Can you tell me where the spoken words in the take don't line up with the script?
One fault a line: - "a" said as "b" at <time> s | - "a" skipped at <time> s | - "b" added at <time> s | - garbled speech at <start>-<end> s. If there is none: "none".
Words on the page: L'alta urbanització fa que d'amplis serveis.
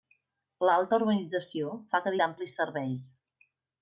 none